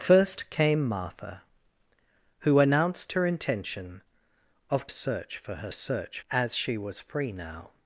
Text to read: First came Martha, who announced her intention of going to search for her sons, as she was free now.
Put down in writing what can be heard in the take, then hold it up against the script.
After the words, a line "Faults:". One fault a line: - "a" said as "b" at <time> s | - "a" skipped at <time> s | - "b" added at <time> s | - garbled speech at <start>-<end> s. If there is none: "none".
First came Martha, who announced her intention of search for her search, as she was free now.
Faults:
- "going to" skipped at 4.9 s
- "sons" said as "search" at 5.7 s